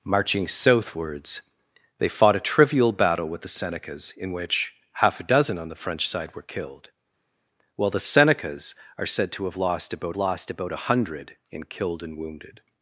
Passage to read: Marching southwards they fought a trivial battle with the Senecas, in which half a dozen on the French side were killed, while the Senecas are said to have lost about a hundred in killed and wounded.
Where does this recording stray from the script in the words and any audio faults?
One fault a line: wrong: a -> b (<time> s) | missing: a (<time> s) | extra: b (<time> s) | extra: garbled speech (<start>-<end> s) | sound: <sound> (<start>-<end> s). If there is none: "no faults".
extra: lost about (10.2 s)